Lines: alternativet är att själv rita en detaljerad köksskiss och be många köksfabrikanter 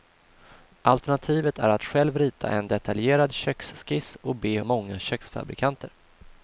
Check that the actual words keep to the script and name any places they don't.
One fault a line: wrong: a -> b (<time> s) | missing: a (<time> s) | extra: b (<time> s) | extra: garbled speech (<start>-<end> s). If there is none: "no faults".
no faults